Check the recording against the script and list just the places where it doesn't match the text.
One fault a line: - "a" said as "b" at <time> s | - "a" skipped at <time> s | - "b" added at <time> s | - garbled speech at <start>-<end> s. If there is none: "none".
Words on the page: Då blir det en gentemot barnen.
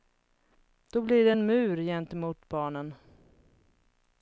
- "mur" added at 1.5 s